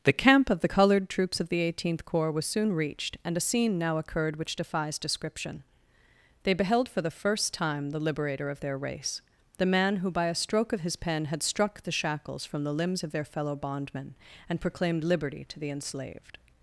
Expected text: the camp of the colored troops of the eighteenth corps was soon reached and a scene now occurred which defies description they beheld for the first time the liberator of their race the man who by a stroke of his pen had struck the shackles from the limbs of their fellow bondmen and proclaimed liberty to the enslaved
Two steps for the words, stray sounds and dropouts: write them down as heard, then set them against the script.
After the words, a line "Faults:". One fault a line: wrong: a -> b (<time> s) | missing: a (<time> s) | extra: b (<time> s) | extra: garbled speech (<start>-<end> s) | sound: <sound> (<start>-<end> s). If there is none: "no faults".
the camp of the colored troops of the eighteenth corps was soon reached and a scene now occurred which defies description they beheld for the first time the liberator of their race the man who by a stroke of his pen had struck the shackles from the limbs of their fellow bondmen and proclaimed liberty to the enslaved
Faults:
no faults